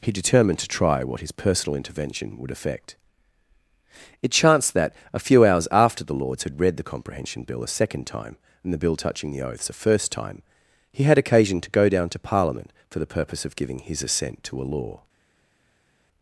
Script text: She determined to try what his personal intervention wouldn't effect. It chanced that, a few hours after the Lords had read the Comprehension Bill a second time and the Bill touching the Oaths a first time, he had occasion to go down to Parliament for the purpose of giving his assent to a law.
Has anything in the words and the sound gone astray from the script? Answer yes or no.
yes